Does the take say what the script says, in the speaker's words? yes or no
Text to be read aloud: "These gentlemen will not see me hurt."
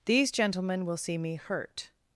no